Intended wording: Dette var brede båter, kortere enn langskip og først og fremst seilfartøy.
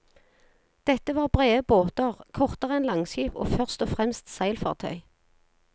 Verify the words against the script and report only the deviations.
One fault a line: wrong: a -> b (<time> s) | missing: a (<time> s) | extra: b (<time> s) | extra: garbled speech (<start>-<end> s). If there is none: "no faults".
no faults